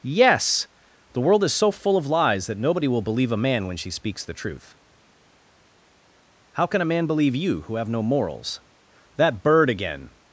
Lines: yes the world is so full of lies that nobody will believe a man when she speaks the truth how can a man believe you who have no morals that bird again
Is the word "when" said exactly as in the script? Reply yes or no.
yes